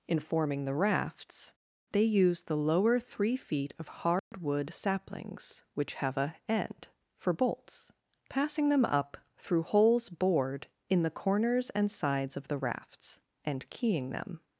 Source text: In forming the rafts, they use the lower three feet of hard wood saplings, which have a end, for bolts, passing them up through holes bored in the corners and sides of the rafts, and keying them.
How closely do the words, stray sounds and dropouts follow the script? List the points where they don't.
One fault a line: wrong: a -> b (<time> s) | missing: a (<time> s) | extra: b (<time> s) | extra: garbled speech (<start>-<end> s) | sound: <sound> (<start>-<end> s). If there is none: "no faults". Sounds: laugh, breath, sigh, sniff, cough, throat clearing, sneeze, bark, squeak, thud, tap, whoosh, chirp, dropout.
sound: dropout (4.2-4.3 s)